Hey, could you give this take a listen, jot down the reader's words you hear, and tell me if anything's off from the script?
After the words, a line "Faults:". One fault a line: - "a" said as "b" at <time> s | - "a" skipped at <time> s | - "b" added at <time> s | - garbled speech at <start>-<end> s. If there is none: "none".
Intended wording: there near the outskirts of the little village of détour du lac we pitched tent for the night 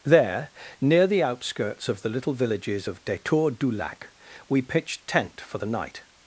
there near the outskirts of the little villages of détour du lac we pitched tent for the night
Faults:
- "village" said as "villages" at 2.3 s